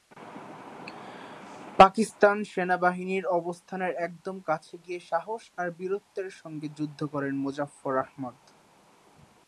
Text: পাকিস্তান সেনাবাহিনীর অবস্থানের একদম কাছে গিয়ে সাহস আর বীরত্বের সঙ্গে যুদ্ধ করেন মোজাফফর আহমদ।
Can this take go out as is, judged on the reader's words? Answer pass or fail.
pass